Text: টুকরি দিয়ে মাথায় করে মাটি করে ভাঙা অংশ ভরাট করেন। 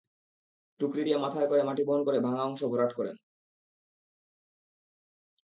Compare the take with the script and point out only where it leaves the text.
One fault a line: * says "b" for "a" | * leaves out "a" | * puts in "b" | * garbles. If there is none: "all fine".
* puts in "বহন"